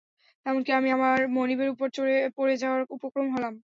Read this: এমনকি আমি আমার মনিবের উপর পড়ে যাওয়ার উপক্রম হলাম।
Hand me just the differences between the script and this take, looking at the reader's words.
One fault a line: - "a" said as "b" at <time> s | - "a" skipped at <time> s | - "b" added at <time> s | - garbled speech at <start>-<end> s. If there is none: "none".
none